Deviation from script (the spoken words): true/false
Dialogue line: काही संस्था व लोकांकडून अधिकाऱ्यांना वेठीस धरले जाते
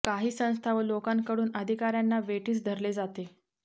false